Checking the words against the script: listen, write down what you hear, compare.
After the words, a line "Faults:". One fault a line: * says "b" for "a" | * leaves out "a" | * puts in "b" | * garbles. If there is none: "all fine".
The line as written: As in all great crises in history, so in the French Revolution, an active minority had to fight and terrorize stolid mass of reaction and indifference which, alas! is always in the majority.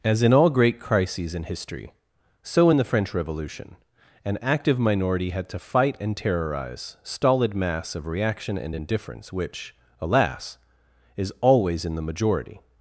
As in all great crises in history, so in the French Revolution, an active minority had to fight and terrorize stolid mass of reaction and indifference which, alas! is always in the majority.
Faults:
all fine